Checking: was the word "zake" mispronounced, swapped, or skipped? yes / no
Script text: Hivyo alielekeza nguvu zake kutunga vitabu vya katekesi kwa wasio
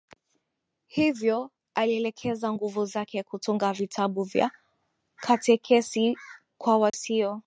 no